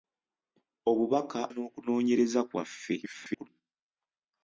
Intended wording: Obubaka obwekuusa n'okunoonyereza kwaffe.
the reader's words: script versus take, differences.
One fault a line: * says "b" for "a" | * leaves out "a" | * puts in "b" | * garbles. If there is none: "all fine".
* leaves out "obwekuusa"
* garbles